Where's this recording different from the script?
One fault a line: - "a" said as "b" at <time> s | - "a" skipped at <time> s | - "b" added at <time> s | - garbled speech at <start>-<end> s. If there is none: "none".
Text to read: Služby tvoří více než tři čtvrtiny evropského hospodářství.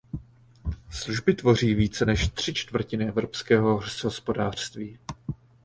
none